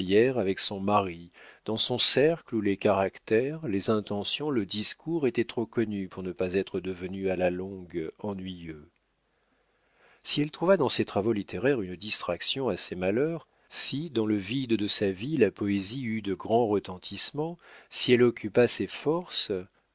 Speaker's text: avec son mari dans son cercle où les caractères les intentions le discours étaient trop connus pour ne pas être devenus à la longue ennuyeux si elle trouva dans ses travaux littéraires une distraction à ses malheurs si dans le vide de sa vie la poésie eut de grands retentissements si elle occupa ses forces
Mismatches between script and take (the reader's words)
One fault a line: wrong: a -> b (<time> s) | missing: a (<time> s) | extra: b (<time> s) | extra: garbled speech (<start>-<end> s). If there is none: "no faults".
no faults